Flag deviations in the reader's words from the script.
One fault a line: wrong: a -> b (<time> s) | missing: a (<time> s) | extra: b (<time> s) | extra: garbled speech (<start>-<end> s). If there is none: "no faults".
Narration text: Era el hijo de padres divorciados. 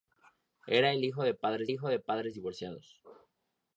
extra: hijo de padres (1.7 s)